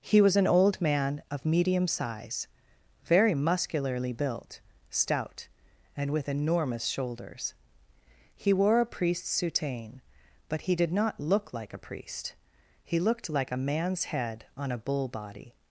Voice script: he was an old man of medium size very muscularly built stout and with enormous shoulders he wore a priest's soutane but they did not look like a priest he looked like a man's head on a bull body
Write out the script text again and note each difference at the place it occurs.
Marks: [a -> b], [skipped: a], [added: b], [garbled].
he was an old man of medium size very muscularly built stout and with enormous shoulders he wore a priest's soutane but [they -> he] did not look like a priest he looked like a man's head on a bull body